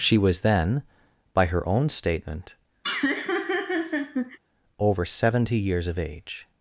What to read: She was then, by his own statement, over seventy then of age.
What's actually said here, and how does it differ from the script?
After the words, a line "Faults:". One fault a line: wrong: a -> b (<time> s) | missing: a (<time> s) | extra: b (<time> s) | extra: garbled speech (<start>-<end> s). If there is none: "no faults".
She was then, by her own statement, over seventy years of age.
Faults:
wrong: his -> her (1.4 s)
wrong: then -> years (5.6 s)